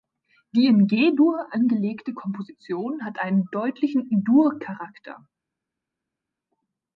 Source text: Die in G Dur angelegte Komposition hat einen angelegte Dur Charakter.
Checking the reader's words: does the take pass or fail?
fail